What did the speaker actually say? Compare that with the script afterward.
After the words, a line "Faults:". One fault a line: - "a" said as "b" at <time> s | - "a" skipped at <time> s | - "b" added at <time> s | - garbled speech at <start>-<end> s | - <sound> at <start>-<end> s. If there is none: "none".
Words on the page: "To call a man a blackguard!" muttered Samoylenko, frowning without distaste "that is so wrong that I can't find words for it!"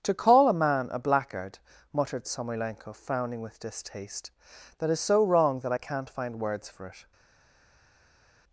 "To call a man a blackguard!" muttered Samoylenko, frowning with distaste "that is so wrong that I can't find words for it!"
Faults:
- "without" said as "with" at 3.4 s